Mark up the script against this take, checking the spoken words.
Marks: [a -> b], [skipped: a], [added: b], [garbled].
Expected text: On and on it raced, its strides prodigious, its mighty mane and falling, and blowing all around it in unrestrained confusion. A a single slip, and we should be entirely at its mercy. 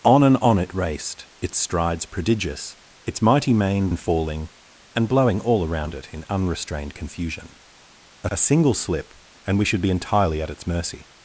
On and on it raced, its strides prodigious, its mighty mane and falling, and blowing all around it in unrestrained confusion. A a single slip, and we should be entirely at its mercy.